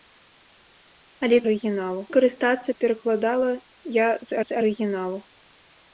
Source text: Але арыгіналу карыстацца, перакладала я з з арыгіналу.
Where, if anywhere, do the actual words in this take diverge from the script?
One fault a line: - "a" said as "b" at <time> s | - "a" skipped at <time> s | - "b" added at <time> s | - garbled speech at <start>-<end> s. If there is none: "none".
none